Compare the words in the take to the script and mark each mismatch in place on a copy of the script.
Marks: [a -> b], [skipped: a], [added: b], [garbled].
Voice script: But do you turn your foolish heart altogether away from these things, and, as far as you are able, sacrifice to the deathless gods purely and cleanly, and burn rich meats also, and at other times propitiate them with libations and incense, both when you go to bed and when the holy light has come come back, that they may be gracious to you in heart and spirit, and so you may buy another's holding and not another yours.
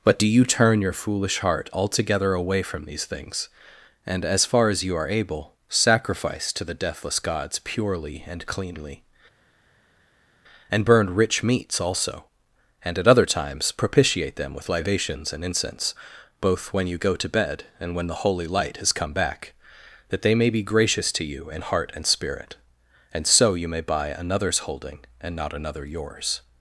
But do you turn your foolish heart altogether away from these things, and, as far as you are able, sacrifice to the deathless gods purely and cleanly, and burn rich meats also, and at other times propitiate them with libations and incense, both when you go to bed and when the holy light has come [skipped: come] back, that they may be gracious to you in heart and spirit, and so you may buy another's holding and not another yours.